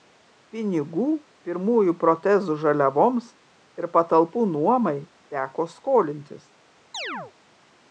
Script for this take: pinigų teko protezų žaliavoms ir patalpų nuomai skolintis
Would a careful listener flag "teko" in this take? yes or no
yes